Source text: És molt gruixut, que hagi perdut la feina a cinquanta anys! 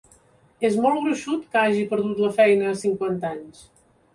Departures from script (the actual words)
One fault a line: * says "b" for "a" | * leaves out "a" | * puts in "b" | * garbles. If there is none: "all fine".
all fine